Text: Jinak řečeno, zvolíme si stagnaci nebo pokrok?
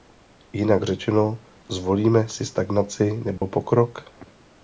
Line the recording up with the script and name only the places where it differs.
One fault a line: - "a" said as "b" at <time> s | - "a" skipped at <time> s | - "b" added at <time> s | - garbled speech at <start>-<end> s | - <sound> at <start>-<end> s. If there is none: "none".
- dropout at 3.4-3.4 s